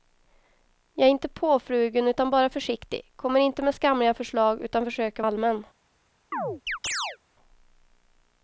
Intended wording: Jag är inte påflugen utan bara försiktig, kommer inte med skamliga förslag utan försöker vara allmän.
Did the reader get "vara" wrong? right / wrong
wrong